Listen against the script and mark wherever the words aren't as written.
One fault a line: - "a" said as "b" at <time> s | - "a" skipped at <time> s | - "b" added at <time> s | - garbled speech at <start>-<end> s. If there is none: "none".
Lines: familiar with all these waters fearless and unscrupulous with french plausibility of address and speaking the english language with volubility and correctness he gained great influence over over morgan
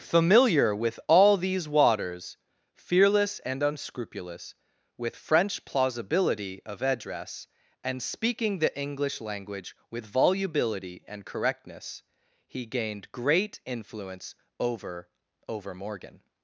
none